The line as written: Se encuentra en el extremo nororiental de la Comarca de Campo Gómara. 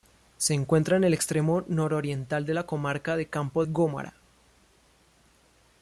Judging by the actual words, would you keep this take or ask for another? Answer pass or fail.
pass